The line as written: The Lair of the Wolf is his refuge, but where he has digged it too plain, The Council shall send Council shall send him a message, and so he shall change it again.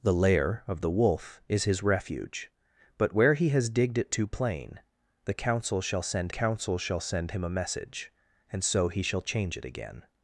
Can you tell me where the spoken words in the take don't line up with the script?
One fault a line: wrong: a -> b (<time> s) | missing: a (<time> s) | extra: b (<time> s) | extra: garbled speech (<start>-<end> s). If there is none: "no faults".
no faults